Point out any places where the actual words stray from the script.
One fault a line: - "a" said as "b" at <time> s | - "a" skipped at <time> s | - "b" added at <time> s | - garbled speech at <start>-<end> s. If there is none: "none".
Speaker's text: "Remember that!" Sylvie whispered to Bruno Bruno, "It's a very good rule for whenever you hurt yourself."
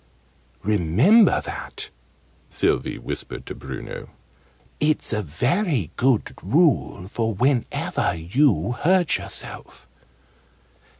- "Bruno" skipped at 4.1 s